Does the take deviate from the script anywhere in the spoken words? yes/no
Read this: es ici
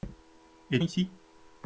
no